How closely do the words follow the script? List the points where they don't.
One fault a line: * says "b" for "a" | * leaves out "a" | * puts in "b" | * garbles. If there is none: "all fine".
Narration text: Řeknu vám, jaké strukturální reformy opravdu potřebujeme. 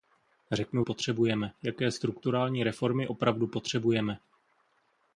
* says "potřebujeme" for "vám"